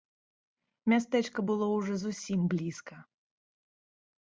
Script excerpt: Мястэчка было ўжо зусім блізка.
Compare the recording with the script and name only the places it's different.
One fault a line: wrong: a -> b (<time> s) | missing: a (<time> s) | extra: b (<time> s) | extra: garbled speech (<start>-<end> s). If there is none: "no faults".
no faults